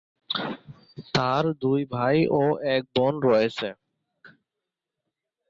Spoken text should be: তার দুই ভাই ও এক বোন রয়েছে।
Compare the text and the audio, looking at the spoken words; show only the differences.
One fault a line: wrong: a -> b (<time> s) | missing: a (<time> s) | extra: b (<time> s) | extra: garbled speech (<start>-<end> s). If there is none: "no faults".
no faults